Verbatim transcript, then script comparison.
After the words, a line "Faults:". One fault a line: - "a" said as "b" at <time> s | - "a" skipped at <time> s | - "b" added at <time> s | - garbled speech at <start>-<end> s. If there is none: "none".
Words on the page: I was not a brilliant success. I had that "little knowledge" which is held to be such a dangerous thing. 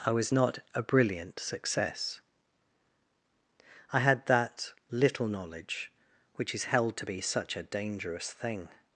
I was not a brilliant success. I had that "little knowledge" which is held to be such a dangerous thing.
Faults:
none